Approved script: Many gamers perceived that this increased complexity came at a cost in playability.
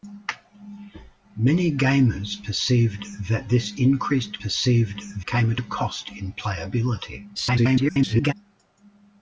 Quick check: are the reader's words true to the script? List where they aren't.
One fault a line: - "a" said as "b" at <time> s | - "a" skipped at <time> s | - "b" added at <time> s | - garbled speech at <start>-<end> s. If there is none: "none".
- "complexity" said as "perceived" at 4.4 s
- garbled speech at 7.3-8.3 s